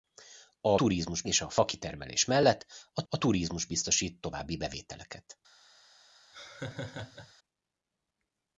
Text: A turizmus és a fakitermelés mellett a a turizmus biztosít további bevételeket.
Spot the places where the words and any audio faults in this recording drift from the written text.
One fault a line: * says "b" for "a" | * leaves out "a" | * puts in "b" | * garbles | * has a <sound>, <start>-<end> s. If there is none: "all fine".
* has a laugh, 6.3-7.3 s